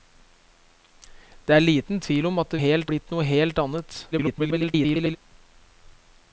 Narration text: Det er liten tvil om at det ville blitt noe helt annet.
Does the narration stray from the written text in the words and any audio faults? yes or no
yes